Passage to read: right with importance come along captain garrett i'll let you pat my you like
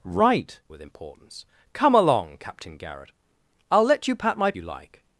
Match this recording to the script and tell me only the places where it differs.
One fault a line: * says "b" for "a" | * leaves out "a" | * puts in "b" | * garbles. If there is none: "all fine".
all fine